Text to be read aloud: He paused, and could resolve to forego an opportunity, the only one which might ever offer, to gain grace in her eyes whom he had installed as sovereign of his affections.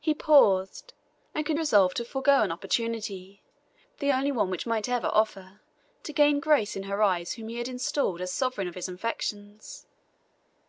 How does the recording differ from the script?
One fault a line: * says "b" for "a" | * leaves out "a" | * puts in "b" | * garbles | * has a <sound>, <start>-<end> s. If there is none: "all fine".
all fine